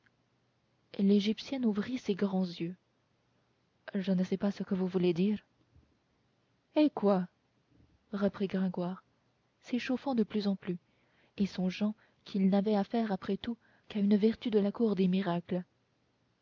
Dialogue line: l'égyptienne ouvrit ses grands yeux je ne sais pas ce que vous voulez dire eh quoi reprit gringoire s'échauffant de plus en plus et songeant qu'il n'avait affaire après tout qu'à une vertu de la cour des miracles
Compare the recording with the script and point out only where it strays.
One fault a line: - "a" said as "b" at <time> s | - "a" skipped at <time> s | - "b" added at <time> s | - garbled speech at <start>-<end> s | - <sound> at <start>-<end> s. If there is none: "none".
none